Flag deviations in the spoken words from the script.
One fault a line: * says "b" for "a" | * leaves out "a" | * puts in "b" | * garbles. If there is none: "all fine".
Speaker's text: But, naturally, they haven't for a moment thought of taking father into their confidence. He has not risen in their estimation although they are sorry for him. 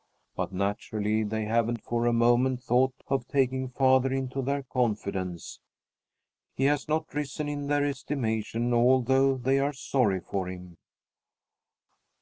all fine